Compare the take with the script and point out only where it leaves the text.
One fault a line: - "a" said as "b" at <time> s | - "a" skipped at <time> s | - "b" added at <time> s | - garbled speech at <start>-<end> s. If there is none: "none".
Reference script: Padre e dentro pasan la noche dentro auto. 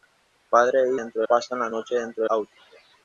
none